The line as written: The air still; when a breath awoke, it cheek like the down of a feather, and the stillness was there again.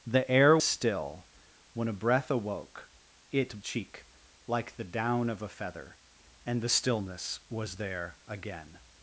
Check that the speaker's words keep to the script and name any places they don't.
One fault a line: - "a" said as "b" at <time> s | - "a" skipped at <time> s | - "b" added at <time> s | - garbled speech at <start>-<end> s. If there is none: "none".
none